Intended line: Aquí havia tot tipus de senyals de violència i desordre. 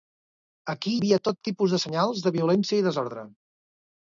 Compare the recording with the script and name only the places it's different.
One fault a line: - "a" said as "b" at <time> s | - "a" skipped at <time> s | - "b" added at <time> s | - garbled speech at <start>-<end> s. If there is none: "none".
none